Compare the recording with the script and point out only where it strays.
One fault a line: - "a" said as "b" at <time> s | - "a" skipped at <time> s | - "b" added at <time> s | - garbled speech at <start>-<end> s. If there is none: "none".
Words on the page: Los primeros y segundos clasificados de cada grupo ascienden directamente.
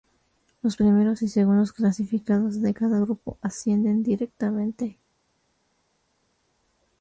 none